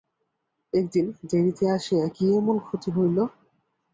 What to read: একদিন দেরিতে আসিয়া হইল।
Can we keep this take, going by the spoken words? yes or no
no